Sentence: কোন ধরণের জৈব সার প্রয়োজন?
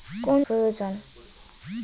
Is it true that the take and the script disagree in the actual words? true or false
true